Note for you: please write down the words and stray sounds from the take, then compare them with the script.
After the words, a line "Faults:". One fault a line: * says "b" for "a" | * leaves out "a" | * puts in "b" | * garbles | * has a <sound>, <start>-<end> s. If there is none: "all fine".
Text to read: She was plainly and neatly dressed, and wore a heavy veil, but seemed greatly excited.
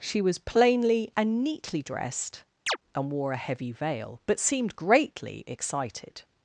She was plainly and neatly dressed, and wore a heavy veil, but seemed greatly excited.
Faults:
* has a chirp, 2.7-2.8 s